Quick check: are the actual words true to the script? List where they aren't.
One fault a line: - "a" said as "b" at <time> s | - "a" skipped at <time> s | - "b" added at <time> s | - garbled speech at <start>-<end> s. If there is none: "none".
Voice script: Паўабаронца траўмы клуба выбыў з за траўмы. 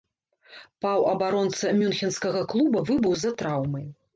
- "траўмы" said as "мюнхенскага" at 1.8 s